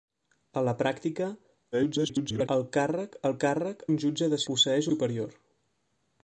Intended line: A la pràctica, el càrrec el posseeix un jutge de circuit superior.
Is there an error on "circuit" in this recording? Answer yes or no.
yes